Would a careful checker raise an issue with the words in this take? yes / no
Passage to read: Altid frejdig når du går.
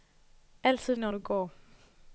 yes